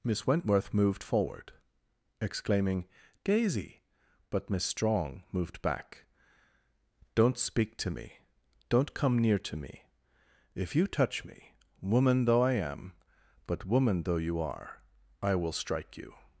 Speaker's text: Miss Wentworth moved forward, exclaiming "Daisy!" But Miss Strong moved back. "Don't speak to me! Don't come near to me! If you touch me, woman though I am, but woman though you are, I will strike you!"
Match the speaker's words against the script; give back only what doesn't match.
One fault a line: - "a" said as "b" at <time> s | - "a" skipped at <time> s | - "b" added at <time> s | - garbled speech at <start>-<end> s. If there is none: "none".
none